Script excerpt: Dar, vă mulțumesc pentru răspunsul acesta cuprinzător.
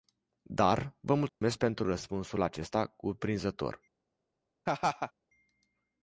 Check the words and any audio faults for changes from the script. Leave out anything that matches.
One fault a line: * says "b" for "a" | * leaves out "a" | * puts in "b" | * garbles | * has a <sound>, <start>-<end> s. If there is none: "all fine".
* has a dropout, 1.3-1.4 s
* has a laugh, 4.7-5.1 s